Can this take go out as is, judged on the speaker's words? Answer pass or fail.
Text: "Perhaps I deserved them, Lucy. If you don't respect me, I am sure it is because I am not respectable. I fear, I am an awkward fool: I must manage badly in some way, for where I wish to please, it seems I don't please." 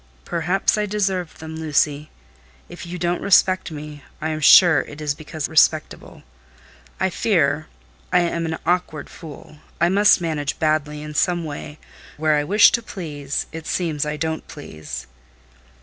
fail